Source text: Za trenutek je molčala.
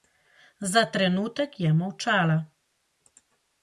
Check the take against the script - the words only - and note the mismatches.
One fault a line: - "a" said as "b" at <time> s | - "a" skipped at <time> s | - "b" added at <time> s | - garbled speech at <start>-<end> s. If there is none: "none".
none